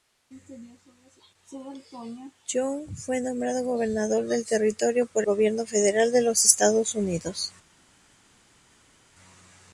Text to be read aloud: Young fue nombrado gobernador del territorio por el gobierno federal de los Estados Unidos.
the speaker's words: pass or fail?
fail